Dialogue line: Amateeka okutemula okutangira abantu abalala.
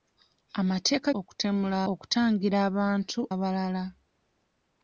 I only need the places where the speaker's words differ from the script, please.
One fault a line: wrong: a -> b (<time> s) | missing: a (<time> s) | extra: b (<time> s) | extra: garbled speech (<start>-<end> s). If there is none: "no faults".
no faults